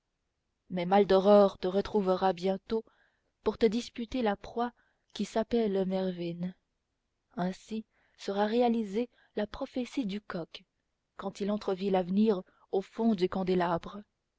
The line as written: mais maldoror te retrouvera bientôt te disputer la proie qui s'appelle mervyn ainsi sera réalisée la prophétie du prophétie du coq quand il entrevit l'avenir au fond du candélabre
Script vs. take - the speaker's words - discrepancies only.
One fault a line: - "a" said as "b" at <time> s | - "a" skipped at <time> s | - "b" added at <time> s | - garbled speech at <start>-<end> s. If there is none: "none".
- "pour" added at 3.4 s
- "prophétie du" skipped at 10.2 s